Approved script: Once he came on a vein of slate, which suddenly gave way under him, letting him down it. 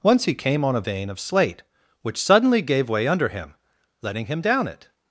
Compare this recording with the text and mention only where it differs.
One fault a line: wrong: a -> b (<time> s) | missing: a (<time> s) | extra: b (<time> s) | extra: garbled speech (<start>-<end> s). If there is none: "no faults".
no faults